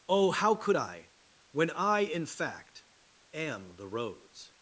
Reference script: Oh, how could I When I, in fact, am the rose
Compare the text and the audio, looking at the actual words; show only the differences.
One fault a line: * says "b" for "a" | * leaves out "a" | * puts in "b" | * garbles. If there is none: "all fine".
all fine